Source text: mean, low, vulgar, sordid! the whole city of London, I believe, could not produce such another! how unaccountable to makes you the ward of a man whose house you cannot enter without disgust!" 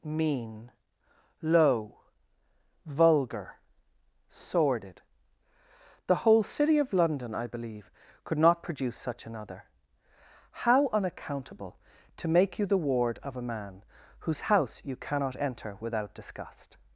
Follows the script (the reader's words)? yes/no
no